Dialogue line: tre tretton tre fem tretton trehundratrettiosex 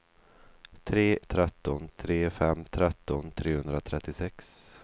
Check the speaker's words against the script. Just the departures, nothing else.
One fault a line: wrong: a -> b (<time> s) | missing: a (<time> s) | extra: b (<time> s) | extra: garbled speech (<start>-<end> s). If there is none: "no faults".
no faults